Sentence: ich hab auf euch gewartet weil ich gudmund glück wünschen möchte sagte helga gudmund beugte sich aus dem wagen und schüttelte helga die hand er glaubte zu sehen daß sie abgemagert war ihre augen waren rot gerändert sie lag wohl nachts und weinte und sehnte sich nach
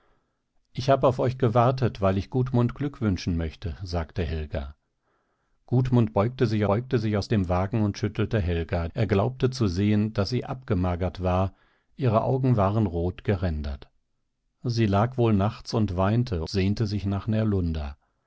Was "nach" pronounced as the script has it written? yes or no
yes